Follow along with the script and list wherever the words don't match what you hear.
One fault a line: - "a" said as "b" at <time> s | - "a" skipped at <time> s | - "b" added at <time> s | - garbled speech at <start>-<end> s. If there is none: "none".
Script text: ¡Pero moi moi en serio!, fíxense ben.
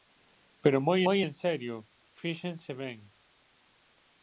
none